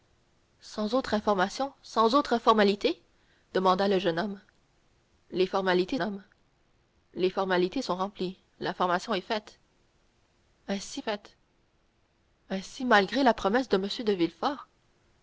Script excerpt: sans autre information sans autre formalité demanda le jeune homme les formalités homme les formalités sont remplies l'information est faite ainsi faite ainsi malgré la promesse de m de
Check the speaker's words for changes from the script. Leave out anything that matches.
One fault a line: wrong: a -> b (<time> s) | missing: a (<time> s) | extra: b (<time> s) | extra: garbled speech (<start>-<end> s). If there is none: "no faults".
no faults